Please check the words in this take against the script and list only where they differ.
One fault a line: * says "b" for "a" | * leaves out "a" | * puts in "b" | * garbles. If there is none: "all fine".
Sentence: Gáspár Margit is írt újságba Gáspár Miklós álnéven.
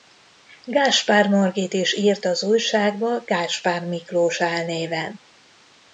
* puts in "az"